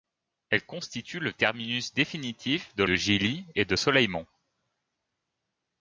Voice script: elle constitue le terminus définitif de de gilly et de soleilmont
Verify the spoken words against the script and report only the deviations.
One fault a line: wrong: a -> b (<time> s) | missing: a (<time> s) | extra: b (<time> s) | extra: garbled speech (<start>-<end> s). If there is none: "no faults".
no faults